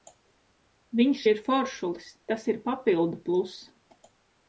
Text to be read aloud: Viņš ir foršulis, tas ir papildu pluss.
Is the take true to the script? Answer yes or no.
yes